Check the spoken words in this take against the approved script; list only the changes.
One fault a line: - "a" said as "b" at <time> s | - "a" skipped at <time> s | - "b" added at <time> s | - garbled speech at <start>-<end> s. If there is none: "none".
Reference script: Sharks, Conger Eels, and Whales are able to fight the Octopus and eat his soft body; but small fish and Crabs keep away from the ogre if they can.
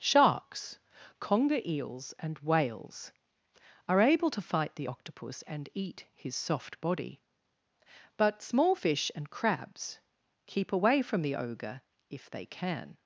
none